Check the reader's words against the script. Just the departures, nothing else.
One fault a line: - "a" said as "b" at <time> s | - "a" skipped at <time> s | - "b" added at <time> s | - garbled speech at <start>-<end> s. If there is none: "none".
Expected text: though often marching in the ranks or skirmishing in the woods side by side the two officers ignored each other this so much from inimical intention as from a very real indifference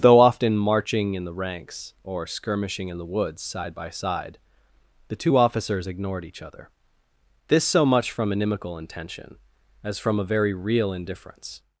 none